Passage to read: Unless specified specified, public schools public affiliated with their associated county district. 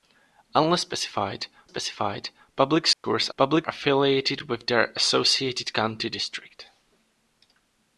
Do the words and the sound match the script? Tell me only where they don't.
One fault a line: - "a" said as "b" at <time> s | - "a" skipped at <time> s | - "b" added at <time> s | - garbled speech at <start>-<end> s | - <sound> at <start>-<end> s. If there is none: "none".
- dropout at 2.9-3.0 s